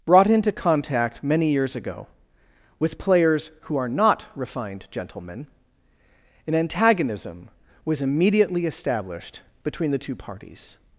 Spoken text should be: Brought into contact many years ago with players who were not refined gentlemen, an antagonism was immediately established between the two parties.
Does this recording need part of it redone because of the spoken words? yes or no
yes